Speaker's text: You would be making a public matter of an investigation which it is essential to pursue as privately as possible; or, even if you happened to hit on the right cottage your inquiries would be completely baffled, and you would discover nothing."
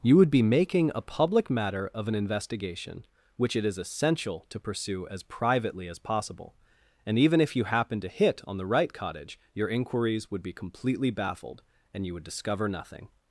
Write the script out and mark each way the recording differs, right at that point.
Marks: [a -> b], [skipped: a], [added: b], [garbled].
You would be making a public matter of an investigation which it is essential to pursue as privately as possible; [or, -> and] even if you happened to hit on the right cottage your inquiries would be completely baffled, and you would discover nothing."